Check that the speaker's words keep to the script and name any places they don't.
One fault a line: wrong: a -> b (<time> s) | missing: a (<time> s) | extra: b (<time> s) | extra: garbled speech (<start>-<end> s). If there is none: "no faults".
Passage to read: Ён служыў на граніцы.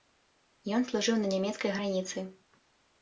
extra: нямецкай (1.4 s)